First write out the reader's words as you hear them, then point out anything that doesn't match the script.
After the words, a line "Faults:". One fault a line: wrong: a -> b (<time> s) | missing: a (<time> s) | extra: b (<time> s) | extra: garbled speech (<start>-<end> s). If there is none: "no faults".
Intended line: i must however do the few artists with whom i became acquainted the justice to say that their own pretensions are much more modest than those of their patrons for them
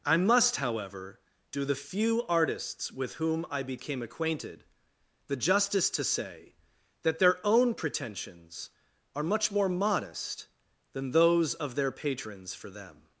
i must however do the few artists with whom i became acquainted the justice to say that their own pretensions are much more modest than those of their patrons for them
Faults:
no faults